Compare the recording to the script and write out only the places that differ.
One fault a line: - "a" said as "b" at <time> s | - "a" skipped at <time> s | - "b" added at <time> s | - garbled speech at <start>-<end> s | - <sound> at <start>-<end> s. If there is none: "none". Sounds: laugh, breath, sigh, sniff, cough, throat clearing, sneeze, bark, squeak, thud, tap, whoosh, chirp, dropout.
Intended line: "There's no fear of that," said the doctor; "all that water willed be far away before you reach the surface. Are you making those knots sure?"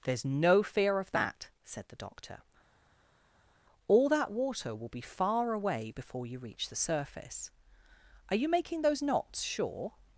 - "willed" said as "will" at 4.7 s